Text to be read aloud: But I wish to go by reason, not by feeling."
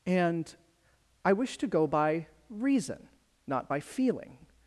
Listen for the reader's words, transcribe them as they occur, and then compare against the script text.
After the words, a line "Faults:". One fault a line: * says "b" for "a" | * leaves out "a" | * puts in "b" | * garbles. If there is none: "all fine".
And I wish to go by reason, not by feeling."
Faults:
* says "And" for "But"